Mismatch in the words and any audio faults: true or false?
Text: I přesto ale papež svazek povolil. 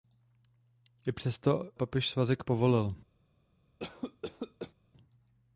true